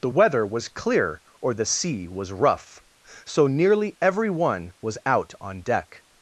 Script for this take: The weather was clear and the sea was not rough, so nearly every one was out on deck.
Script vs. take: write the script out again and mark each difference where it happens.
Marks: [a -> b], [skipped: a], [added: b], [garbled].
The weather was clear [and -> or] the sea was [skipped: not] rough, so nearly every one was out on deck.